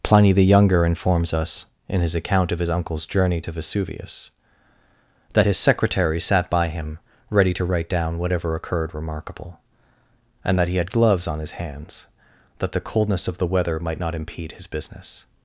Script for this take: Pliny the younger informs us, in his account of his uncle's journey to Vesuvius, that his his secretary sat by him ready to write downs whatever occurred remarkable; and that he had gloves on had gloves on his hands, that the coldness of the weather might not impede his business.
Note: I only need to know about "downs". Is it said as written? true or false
false